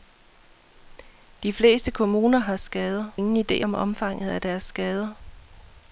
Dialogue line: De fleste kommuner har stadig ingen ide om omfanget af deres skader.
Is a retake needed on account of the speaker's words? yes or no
yes